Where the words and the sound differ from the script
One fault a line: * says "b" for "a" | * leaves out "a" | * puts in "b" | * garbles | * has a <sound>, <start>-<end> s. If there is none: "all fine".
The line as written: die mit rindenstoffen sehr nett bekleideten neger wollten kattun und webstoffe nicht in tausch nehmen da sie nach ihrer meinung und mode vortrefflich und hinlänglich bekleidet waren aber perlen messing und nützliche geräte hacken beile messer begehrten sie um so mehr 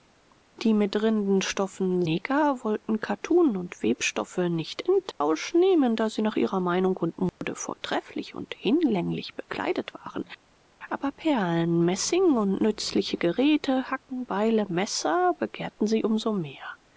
* leaves out "sehr nett bekleideten"
* has a dropout, 5.1-5.2 s
* has a dropout, 7.3-7.4 s